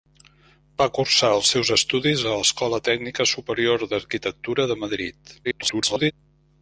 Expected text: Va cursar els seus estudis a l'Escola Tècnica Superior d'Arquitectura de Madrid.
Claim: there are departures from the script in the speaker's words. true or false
true